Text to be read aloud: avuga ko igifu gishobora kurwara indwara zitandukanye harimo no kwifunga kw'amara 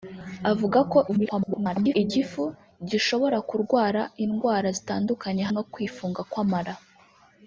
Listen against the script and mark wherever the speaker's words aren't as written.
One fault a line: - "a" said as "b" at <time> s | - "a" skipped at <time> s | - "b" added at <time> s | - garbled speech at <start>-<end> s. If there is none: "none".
- garbled speech at 1.1-2.0 s
- "harimo" skipped at 5.4 s